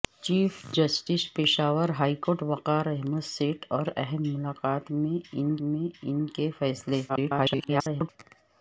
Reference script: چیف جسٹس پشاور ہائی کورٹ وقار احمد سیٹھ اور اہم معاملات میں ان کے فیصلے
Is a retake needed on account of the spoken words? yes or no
yes